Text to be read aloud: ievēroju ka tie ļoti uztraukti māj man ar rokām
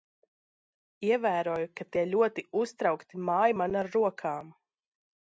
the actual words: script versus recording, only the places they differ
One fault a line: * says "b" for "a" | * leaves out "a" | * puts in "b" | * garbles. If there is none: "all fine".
all fine